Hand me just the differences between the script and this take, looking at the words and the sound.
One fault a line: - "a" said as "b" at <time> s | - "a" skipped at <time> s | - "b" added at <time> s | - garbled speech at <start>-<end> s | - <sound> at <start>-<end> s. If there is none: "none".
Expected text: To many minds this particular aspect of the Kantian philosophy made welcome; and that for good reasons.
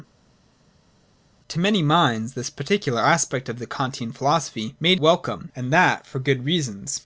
none